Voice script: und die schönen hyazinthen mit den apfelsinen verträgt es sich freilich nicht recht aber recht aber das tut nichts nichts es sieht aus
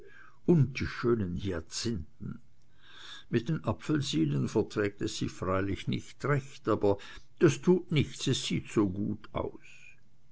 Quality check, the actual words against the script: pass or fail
fail